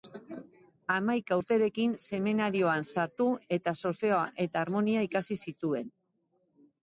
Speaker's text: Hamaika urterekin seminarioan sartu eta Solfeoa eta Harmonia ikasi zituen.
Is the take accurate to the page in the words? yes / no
yes